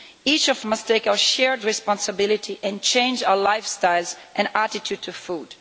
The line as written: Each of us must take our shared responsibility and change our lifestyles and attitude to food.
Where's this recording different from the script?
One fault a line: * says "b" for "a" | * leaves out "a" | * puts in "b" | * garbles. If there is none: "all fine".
* leaves out "us"